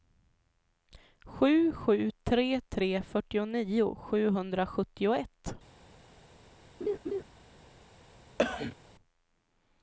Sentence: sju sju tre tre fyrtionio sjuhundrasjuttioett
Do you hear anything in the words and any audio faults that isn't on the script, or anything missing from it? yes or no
yes